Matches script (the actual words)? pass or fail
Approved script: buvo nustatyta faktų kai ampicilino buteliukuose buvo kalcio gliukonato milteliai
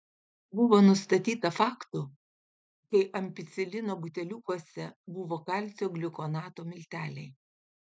pass